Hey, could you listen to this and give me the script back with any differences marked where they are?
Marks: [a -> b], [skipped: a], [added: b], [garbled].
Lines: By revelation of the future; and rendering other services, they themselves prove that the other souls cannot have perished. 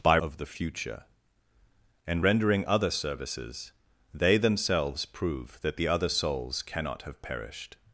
By [skipped: revelation] of the future; and rendering other services, they themselves prove that the other souls cannot have perished.